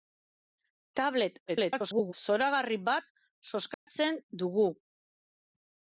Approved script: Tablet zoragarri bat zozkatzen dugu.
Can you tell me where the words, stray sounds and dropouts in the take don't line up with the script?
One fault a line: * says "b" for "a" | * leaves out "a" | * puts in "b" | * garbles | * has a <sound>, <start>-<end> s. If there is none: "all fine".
* garbles
* has a dropout, 3.7-3.9 s